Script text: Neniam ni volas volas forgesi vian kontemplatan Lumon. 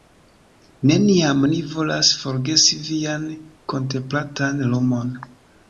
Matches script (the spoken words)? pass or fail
fail